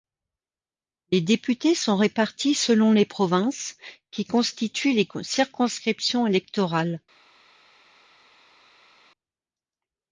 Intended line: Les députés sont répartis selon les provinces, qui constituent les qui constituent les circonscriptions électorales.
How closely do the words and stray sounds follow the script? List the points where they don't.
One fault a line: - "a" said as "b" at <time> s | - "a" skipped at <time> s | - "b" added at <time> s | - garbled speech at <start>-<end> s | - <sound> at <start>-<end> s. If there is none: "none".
- "qui constituent les" skipped at 5.1 s